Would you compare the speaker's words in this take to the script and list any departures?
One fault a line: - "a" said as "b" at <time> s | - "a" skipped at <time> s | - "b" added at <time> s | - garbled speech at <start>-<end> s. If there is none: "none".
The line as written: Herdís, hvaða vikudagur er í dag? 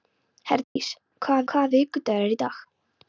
- "hvaða" added at 1.5 s